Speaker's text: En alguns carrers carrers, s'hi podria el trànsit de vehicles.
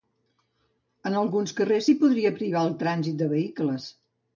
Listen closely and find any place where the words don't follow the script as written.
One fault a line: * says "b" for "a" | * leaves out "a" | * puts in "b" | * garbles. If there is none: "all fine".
* leaves out "carrers"
* puts in "privar"